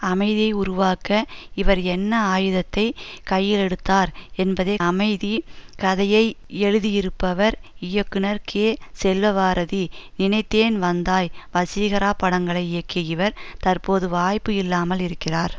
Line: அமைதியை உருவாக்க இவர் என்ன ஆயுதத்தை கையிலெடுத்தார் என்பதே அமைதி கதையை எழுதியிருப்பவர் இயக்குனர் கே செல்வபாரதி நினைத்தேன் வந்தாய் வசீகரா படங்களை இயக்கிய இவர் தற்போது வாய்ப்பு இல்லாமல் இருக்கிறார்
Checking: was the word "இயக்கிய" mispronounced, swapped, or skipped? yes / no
no